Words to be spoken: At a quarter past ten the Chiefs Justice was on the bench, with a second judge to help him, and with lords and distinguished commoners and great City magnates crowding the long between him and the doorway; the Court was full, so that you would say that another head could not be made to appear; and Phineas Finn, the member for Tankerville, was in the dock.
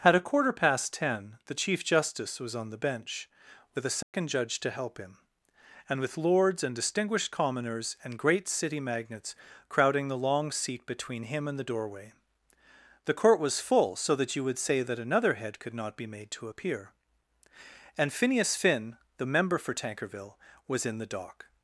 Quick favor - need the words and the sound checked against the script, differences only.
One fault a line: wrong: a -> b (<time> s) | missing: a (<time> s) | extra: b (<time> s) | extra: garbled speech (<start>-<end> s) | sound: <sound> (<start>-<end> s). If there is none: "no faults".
wrong: Chiefs -> Chief (1.5 s)
sound: dropout (4.0-4.1 s)
extra: seat (10.5 s)